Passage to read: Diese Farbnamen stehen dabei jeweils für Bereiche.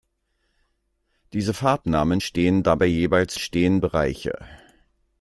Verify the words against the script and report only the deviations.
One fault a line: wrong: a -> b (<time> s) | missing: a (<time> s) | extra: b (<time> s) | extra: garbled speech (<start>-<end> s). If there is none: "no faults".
wrong: für -> stehen (3.4 s)